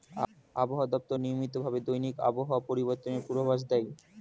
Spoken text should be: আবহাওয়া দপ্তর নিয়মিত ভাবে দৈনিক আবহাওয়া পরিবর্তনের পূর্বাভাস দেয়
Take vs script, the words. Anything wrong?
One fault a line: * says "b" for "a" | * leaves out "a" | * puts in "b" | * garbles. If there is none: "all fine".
all fine